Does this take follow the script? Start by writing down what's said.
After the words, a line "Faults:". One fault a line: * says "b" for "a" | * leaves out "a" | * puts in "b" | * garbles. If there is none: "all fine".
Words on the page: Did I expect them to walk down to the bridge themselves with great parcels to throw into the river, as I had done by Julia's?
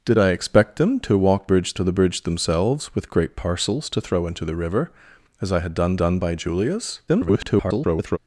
Did I expect them to walk bridge to the bridge themselves with great parcels to throw into the river, as I had done done by Julia's? [garbled]
Faults:
* says "bridge" for "down"
* puts in "done"
* garbles